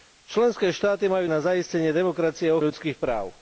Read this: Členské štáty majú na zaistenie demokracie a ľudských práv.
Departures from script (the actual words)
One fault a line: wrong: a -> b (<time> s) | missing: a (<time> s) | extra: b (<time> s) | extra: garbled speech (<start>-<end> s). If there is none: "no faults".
no faults